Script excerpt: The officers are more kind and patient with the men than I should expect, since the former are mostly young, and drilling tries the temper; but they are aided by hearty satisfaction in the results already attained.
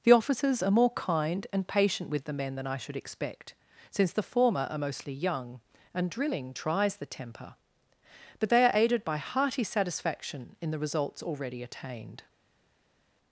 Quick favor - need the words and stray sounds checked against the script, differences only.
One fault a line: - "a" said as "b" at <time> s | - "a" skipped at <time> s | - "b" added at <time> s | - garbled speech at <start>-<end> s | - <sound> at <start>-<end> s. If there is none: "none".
none